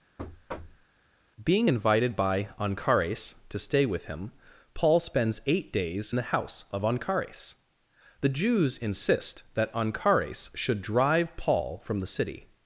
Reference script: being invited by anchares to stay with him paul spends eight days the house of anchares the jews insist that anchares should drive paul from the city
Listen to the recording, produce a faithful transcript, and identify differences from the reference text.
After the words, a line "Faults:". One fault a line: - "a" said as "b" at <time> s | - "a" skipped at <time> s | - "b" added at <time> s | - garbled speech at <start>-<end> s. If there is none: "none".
being invited by anchares to stay with him paul spends eight days the house of anchares the jews insist that anchares should drive paul from the city
Faults:
none